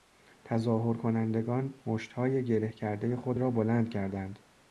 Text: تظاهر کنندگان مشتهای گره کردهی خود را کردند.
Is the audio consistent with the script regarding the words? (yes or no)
no